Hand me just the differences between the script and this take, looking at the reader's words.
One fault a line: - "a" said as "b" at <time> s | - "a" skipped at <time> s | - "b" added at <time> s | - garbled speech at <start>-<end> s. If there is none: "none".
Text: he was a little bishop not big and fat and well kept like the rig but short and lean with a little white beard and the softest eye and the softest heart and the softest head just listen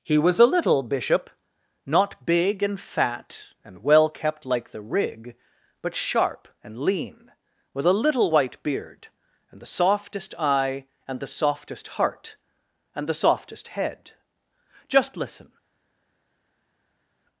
- "short" said as "sharp" at 6.0 s